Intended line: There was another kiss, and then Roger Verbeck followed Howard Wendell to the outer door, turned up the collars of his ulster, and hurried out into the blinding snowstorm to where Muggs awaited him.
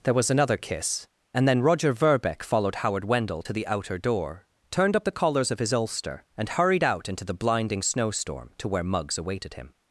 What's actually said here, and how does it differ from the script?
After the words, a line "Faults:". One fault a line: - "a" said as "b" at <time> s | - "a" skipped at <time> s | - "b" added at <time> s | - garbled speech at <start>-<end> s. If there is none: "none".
There was another kiss, and then Roger Verbeck followed Howard Wendell to the outer door, turned up the collars of his ulster, and hurried out into the blinding snowstorm to where Muggs awaited him.
Faults:
none